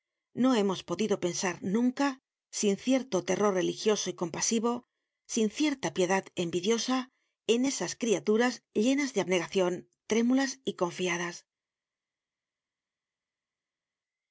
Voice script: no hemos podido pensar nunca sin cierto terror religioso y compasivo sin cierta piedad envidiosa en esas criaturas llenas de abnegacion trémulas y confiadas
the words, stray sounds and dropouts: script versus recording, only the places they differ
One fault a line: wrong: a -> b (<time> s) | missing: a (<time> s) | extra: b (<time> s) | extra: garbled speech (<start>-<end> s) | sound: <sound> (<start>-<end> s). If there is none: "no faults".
no faults